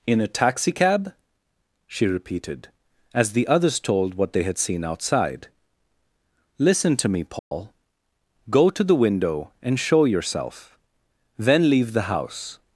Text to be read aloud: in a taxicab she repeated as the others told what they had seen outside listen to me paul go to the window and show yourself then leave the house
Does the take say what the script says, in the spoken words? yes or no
yes